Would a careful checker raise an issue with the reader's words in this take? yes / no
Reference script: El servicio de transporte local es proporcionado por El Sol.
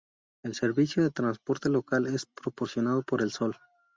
no